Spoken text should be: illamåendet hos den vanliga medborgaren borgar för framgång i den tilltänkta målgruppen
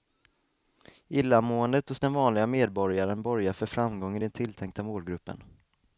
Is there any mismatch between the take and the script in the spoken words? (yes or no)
no